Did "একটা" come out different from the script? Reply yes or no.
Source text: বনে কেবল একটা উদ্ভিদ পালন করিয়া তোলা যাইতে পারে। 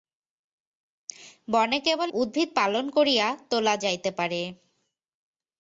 yes